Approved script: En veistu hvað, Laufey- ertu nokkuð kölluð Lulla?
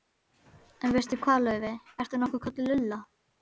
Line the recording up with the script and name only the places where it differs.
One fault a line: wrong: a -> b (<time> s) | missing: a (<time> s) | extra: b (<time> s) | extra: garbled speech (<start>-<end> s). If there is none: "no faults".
no faults